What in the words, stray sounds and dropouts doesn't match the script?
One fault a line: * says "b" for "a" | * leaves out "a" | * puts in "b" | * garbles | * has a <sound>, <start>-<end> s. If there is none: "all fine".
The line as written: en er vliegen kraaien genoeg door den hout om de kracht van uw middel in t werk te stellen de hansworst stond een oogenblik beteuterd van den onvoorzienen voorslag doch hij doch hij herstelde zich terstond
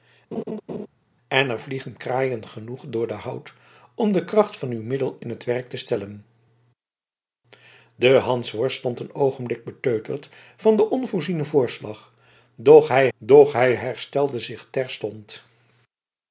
* has a laugh, 0.3-0.9 s